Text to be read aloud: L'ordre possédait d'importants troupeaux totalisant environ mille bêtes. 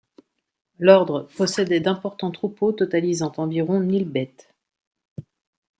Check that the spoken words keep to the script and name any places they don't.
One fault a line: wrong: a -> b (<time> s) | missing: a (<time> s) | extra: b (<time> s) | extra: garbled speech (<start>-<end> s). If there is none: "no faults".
no faults